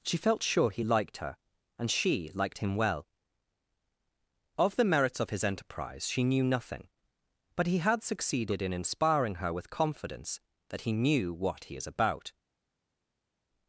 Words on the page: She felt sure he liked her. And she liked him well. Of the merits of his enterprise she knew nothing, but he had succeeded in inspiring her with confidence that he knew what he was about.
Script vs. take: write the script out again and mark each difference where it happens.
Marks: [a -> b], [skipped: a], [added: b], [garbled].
She felt sure he liked her. And she liked him well. Of the merits of his enterprise she knew nothing, but he had succeeded in inspiring her with confidence that he knew what he [was -> is] about.